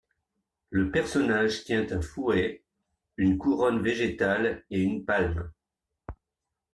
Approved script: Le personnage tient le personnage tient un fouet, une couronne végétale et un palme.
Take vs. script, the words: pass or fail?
fail